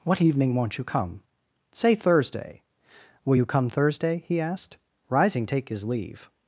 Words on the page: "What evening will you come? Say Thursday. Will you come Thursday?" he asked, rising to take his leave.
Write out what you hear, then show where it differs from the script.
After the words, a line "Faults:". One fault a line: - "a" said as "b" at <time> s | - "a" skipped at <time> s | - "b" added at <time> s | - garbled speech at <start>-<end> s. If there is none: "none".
"What evening won't you come? Say Thursday. Will you come Thursday?" he asked, rising take his leave.
Faults:
- "will" said as "won't" at 0.6 s
- "to" skipped at 5.4 s